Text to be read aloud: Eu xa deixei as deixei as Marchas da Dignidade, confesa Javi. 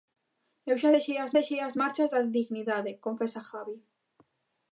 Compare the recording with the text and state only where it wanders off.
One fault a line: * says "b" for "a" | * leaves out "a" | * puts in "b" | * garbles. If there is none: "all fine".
all fine